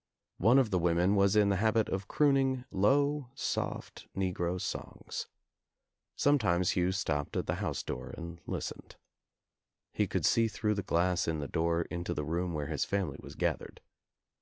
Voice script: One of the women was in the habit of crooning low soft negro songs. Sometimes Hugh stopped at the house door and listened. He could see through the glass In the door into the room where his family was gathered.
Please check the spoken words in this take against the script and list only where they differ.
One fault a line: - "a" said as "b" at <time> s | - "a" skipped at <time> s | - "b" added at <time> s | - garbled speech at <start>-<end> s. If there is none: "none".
none